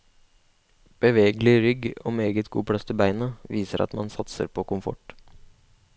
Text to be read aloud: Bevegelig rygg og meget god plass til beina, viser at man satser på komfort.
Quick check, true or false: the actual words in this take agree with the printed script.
true